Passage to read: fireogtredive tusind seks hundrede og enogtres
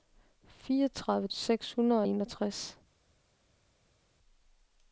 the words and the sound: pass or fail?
fail